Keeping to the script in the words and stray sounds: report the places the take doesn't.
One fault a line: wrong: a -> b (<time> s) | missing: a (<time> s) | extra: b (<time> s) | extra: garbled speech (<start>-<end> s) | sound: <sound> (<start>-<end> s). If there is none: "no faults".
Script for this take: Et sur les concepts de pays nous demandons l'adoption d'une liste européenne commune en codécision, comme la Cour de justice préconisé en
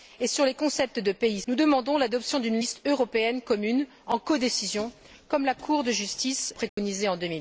sound: dropout (6.7-6.8 s)